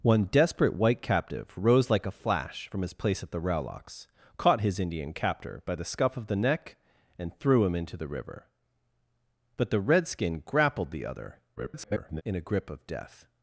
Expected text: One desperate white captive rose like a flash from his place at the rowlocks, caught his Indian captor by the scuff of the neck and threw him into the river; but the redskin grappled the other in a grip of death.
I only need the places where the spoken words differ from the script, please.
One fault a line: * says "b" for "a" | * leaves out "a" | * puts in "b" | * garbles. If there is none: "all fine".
* garbles